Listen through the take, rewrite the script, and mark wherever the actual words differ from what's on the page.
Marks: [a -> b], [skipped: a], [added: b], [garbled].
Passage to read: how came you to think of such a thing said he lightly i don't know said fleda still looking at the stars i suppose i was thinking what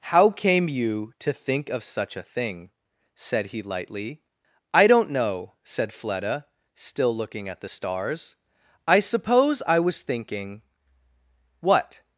how came you to think of such a thing said he lightly i don't know said fleda still looking at the stars i suppose i was thinking what